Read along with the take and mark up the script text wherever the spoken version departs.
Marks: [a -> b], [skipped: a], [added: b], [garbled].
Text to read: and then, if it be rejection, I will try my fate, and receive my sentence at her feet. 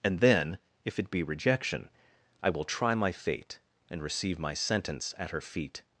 and then, if it be rejection, I will try my fate, and receive my sentence at her feet.